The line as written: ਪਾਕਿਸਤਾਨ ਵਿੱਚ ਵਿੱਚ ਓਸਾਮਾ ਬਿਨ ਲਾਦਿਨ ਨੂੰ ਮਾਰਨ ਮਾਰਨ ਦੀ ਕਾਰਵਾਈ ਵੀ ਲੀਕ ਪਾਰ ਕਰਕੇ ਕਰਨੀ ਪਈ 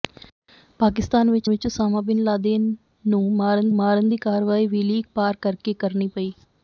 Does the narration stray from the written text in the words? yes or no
no